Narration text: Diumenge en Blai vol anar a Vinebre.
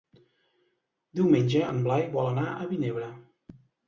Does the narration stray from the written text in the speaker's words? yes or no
no